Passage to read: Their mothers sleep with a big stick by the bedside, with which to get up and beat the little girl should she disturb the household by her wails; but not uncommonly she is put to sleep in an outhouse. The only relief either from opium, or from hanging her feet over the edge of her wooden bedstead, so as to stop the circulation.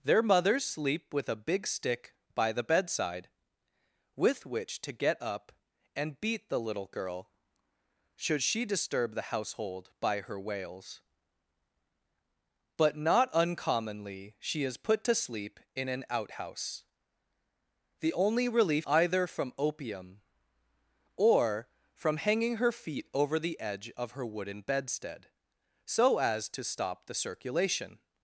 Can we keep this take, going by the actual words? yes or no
yes